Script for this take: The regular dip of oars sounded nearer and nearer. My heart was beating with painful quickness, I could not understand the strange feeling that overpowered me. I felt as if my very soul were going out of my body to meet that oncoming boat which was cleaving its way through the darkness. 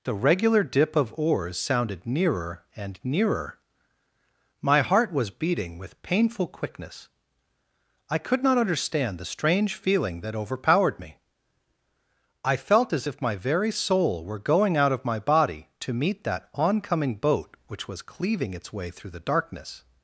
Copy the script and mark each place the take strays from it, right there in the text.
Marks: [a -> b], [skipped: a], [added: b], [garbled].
The regular dip of oars sounded nearer and nearer. My heart was beating with painful quickness, I could not understand the strange feeling that overpowered me. I felt as if my very soul were going out of my body to meet that oncoming boat which was cleaving its way through the darkness.